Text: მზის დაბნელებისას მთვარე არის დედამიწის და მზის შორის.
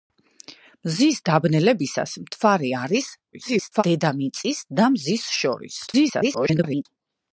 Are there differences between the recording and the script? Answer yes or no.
yes